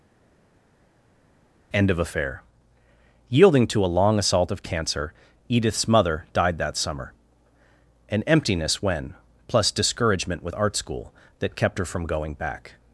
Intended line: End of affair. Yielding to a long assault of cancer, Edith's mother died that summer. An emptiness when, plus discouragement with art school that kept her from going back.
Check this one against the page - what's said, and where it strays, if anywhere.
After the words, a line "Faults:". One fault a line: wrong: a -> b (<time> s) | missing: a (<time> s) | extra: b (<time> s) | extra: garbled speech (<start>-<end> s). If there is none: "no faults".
End of affair. Yielding to a long assault of cancer, Edith's mother died that summer. An emptiness when, plus discouragement with art school that kept her from going back.
Faults:
no faults